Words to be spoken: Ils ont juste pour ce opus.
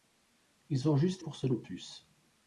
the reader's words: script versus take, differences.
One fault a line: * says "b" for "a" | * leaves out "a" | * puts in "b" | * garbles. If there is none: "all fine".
all fine